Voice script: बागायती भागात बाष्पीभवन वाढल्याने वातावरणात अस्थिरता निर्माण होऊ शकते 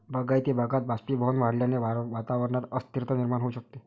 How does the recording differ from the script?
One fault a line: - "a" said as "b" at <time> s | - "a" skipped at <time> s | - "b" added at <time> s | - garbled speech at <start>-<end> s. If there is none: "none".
none